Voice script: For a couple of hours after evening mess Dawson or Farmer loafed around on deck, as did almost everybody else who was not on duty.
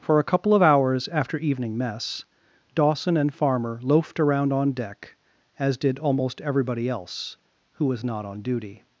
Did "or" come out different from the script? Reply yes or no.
yes